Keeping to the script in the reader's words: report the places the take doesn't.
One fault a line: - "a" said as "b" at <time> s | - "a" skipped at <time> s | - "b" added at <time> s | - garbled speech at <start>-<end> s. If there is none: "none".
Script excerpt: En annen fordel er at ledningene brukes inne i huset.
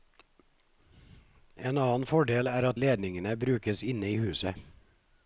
none